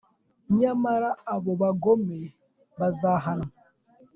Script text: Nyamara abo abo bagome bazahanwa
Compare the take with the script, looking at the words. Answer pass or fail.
fail